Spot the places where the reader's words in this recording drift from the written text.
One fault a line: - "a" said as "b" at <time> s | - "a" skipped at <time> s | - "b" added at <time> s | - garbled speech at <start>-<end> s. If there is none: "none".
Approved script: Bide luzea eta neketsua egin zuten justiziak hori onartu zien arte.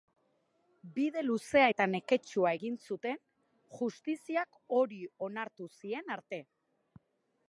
none